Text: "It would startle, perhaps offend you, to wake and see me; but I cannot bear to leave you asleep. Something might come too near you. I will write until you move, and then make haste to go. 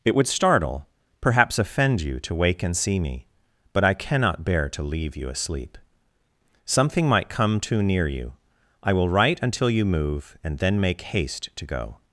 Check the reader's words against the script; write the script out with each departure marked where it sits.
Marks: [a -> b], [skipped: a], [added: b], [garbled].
"It would startle, perhaps offend you, to wake and see me; but I cannot bear to leave you asleep. Something might come too near you. I will write until you move, and then make haste to go.